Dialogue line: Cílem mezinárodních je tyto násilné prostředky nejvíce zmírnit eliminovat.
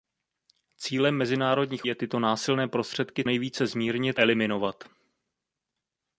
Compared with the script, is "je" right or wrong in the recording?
right